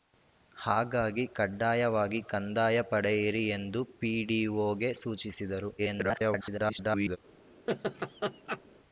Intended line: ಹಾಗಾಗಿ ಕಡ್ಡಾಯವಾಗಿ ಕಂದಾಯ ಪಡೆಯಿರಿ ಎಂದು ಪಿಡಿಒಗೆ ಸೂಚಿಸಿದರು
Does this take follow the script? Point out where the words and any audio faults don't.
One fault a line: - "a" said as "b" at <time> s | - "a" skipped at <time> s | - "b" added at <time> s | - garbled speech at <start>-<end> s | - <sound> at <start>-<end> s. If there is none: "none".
- garbled speech at 5.8-7.2 s
- laugh at 7.7-8.6 s